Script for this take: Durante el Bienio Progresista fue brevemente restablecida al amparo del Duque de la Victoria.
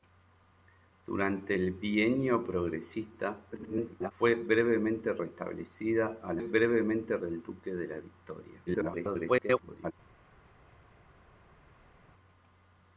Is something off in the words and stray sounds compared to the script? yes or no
yes